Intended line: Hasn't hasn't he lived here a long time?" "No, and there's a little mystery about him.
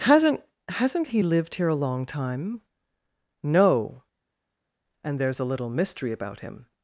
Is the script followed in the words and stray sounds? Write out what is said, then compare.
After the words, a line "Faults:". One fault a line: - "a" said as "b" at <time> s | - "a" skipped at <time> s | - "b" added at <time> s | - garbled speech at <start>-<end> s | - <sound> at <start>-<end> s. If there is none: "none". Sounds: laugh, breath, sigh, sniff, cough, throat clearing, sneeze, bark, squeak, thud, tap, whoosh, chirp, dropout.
Hasn't hasn't he lived here a long time?" "No, and there's a little mystery about him.
Faults:
none